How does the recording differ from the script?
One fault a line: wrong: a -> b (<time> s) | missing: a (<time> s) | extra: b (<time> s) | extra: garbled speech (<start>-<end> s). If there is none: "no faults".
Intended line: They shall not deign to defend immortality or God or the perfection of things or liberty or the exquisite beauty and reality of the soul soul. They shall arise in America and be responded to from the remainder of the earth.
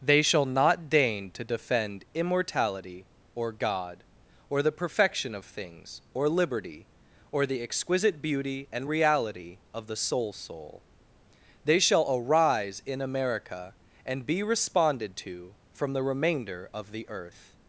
no faults